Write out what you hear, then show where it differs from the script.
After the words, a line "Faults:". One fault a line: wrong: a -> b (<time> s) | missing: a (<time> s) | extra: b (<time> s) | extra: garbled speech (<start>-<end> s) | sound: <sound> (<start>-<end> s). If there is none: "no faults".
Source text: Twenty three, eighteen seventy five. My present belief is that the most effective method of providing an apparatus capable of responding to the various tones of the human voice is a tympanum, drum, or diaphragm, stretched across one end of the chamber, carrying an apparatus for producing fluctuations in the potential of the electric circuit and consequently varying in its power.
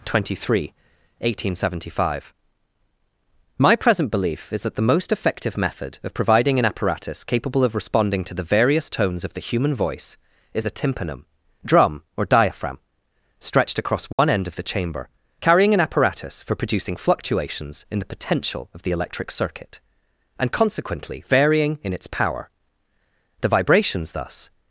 Twenty three, eighteen seventy five. My present belief is that the most effective method of providing an apparatus capable of responding to the various tones of the human voice is a tympanum, drum, or diaphragm, stretched across one end of the chamber, carrying an apparatus for producing fluctuations in the potential of the electric circuit and consequently varying in its power. The vibrations thus
Faults:
sound: dropout (14.1-14.2 s)
extra: The vibrations thus (23.4 s)